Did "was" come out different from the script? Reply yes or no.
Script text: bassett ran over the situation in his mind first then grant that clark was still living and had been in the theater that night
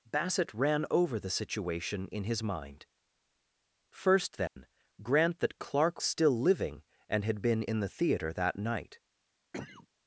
yes